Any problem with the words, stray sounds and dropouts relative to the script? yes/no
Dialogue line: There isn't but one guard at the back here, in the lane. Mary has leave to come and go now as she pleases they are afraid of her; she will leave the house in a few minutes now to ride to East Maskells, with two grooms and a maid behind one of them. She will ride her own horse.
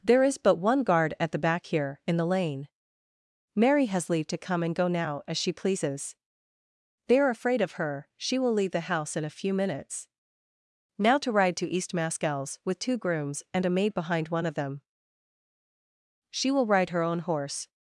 yes